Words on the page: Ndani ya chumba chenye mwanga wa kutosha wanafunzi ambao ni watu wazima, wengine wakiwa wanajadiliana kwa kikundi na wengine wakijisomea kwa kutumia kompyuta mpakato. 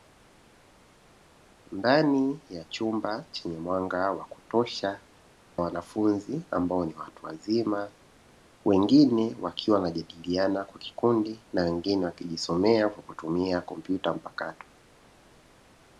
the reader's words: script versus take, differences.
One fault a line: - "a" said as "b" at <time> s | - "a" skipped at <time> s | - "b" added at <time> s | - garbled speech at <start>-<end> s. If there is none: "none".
none